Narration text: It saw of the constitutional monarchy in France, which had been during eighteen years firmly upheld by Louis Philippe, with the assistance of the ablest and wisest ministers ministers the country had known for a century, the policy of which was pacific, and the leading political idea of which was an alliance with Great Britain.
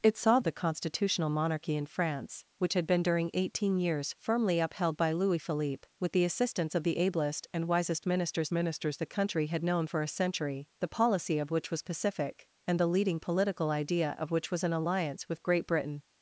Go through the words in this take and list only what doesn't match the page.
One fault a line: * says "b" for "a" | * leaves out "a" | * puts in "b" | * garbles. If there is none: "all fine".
all fine